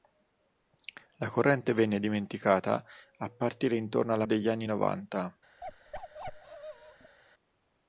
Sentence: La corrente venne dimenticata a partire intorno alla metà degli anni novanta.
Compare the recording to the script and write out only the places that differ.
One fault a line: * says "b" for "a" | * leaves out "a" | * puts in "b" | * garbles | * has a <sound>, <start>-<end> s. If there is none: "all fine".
* leaves out "metà"
* has a bark, 5.6-7.2 s